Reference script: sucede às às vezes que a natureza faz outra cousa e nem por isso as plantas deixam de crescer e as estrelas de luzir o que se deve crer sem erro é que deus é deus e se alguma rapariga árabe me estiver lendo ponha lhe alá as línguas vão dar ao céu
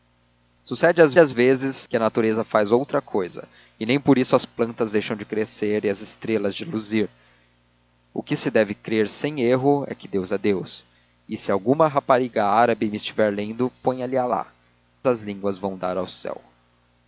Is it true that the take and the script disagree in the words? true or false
false